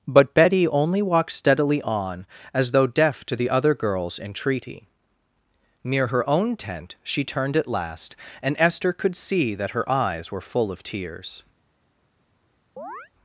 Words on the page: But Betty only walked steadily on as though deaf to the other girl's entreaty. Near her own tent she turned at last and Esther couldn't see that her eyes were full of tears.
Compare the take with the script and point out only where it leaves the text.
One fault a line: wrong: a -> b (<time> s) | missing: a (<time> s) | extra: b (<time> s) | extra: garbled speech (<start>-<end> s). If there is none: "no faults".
wrong: couldn't -> could (8.9 s)